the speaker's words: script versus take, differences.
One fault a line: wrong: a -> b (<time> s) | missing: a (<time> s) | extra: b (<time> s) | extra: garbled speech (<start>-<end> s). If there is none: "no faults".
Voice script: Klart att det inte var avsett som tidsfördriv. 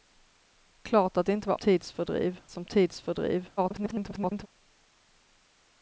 wrong: avsett -> tidsfördriv (1.5 s)
extra: garbled speech (3.6-4.5 s)